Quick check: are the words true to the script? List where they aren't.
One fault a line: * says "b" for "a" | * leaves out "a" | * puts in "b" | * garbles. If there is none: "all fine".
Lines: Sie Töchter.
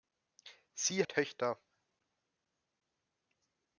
all fine